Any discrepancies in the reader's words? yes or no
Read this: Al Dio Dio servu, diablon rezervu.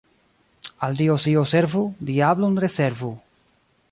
no